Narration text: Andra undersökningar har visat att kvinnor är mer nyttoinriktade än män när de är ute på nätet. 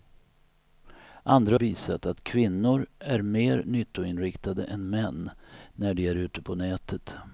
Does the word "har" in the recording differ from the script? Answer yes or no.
yes